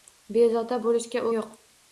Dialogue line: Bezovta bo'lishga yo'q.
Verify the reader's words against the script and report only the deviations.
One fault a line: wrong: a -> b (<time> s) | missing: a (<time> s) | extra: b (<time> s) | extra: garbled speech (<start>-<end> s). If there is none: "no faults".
no faults